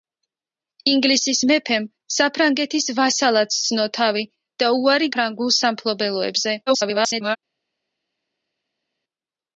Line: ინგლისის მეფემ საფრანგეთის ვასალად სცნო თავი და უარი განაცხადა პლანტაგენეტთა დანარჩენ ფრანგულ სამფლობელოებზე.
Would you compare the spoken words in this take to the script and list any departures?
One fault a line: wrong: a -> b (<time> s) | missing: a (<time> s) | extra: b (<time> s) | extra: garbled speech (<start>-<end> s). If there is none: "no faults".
missing: განაცხადა პლანტაგენეტთა დანარჩენ (5.1 s)
extra: garbled speech (6.7-7.4 s)